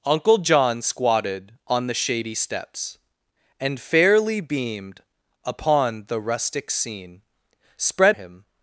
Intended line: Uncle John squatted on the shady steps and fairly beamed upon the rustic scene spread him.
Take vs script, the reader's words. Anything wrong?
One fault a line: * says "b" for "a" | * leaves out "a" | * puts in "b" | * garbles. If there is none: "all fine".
all fine